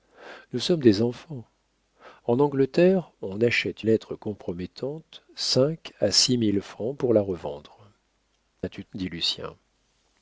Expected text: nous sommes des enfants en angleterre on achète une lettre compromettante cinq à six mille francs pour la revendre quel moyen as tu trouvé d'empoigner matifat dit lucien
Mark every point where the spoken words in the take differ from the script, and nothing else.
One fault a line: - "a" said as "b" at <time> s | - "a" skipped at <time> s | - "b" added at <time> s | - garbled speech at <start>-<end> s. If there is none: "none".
- "une" skipped at 3.9 s
- "quel moyen" skipped at 7.8 s
- "trouvé d'empoigner matifat" skipped at 8.8 s